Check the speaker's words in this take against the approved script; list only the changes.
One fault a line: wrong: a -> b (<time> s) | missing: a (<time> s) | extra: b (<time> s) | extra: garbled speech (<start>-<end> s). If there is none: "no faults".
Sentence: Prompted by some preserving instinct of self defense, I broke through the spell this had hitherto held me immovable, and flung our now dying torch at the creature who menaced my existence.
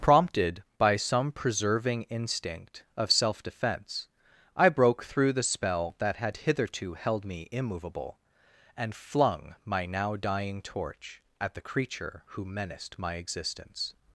wrong: this -> that (6.0 s)
wrong: our -> my (9.6 s)